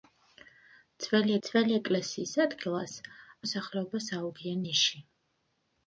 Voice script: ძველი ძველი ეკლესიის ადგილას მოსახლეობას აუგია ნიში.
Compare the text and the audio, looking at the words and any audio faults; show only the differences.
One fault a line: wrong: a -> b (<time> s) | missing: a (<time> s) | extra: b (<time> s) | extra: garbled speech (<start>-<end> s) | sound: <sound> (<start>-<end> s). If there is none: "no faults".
no faults